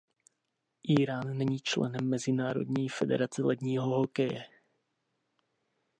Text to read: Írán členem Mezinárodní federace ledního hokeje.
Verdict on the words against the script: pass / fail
fail